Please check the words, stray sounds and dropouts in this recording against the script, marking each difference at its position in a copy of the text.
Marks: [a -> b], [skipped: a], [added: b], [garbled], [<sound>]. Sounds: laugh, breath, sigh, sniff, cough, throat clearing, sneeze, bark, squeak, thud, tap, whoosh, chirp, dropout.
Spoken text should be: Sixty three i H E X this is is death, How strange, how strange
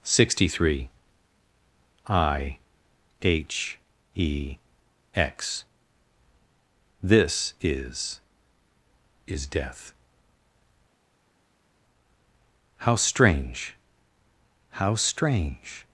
Sixty three i H E X this is is death, How strange, how strange